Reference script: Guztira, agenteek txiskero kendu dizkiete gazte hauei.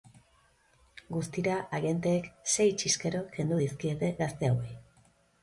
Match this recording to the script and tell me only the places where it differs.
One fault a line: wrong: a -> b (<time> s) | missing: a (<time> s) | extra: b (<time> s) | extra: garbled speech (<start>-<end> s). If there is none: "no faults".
extra: sei (2.5 s)